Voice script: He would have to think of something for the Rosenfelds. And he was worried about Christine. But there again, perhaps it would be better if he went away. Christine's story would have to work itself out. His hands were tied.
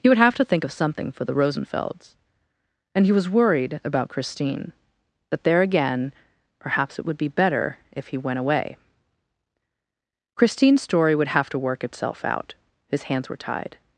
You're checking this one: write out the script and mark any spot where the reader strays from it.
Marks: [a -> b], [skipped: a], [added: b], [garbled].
He would have to think of something for the Rosenfelds. And he was worried about Christine. [But -> That] there again, perhaps it would be better if he went away. Christine's story would have to work itself out. His hands were tied.